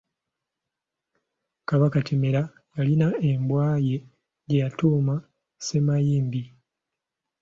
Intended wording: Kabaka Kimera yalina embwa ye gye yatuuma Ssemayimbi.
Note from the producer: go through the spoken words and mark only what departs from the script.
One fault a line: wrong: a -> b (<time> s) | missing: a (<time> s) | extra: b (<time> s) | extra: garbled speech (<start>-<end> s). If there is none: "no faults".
no faults